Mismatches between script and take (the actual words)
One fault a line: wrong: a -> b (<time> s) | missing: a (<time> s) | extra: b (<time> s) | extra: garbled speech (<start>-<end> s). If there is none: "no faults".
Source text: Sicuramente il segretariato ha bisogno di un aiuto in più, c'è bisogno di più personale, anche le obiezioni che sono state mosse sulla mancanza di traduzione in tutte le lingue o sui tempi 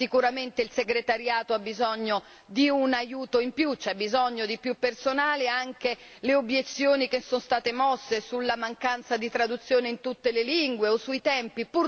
no faults